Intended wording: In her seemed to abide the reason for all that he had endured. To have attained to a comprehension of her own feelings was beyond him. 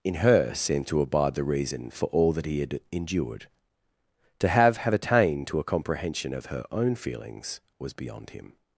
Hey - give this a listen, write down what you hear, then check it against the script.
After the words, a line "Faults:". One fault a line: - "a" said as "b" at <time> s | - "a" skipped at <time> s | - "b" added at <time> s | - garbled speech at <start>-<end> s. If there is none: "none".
In her seemed to abide the reason for all that he had endured. To have have attained to a comprehension of her own feelings was beyond him.
Faults:
- "have" added at 4.8 s